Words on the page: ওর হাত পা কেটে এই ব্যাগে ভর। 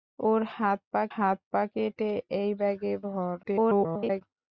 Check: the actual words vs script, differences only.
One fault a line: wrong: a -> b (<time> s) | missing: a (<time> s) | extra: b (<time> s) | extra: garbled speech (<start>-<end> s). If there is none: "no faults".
extra: হাত পা (1.1 s)
extra: garbled speech (3.4-4.2 s)